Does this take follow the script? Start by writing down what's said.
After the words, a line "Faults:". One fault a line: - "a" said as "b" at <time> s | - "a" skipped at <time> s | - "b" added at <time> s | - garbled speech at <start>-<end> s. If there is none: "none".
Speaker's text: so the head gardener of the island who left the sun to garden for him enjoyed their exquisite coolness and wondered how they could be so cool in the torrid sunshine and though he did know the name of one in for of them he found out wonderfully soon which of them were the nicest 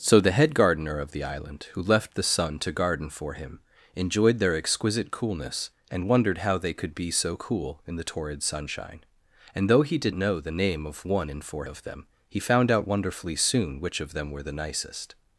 so the head gardener of the island who left the sun to garden for him enjoyed their exquisite coolness and wondered how they could be so cool in the torrid sunshine and though he did know the name of one in for of them he found out wonderfully soon which of them were the nicest
Faults:
none